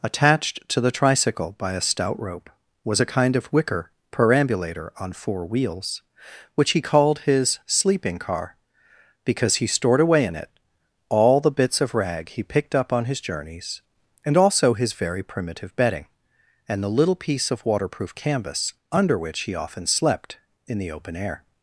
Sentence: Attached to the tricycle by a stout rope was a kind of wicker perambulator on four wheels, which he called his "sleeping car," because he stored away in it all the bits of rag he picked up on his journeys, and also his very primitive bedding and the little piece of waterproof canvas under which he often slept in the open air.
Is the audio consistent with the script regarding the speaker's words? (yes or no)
yes